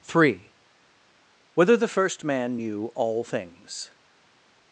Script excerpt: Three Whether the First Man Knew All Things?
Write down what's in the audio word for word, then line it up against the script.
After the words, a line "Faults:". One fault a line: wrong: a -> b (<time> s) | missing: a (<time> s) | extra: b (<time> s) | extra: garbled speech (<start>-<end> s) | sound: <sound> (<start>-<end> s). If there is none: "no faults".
Three Whether the First Man Knew All Things?
Faults:
no faults